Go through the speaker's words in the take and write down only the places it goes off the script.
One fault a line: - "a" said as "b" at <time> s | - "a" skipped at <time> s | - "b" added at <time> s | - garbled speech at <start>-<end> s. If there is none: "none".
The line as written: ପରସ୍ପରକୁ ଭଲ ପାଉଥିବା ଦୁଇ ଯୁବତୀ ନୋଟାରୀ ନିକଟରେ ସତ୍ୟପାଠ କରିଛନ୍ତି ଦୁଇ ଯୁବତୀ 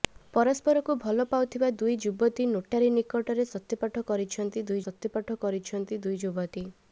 - "ସତ୍ୟପାଠ କରିଛନ୍ତି ଦୁଇ" added at 4.8 s